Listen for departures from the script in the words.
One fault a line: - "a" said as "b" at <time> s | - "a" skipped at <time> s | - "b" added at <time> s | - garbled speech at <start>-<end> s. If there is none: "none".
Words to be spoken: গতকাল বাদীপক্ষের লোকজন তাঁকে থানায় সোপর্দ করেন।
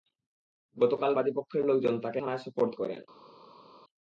none